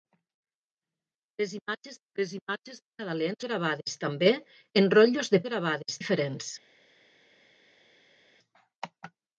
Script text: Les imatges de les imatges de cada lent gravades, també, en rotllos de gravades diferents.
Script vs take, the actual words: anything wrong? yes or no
no